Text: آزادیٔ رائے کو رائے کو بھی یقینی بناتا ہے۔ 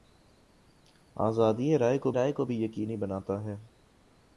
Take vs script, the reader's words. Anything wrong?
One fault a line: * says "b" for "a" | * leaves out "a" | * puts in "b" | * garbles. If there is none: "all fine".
all fine